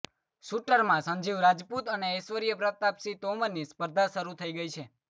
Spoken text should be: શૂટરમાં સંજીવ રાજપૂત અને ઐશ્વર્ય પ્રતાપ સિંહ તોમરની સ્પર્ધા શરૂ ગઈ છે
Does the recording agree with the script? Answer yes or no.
no